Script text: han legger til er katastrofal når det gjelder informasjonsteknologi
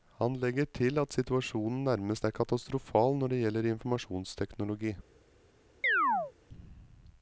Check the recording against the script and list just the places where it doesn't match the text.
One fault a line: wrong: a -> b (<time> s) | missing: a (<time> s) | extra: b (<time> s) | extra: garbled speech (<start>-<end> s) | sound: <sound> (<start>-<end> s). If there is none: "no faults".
extra: at situasjonen nærmest (1.0 s)
sound: chirp (5.8-6.3 s)